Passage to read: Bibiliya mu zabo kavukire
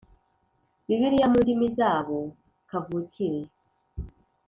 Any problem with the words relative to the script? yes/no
yes